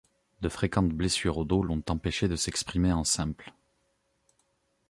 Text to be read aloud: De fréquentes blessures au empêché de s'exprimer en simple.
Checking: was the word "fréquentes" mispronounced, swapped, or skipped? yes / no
no